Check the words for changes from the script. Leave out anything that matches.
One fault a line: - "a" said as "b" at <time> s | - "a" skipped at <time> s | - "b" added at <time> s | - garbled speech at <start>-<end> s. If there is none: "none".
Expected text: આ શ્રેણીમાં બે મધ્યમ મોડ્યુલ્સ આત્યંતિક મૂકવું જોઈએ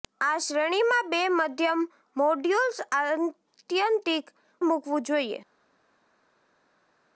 none